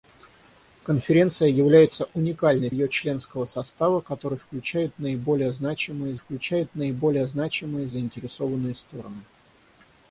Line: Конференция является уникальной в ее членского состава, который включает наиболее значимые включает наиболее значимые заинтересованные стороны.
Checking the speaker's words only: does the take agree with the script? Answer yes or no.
yes